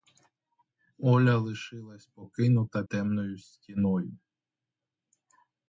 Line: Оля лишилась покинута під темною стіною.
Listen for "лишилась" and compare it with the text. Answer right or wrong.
right